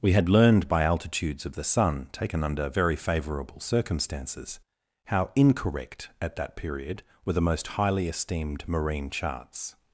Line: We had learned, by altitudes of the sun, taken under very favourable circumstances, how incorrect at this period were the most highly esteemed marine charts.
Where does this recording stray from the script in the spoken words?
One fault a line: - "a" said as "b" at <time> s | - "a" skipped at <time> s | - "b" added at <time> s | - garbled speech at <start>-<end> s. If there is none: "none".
- "this" said as "that" at 6.4 s